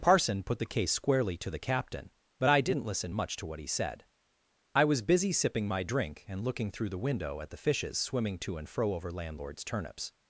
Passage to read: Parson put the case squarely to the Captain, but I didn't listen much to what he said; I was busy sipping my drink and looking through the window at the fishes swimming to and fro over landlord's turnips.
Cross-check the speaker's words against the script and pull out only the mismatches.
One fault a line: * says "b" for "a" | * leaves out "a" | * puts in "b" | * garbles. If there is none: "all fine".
all fine